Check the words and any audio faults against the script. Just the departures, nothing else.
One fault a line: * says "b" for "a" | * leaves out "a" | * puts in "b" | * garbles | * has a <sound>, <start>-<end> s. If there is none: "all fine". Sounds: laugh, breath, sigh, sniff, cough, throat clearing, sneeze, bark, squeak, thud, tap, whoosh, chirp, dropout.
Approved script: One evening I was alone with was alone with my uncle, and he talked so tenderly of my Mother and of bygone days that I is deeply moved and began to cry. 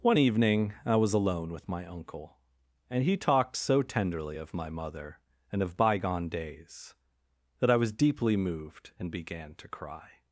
* leaves out "was alone with"
* says "was" for "is"